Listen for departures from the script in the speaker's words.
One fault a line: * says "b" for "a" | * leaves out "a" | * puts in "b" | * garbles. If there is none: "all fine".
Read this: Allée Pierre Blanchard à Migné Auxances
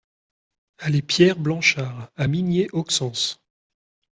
all fine